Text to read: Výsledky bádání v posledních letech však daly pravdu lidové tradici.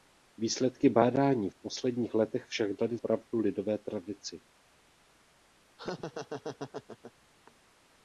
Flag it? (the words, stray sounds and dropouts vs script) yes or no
yes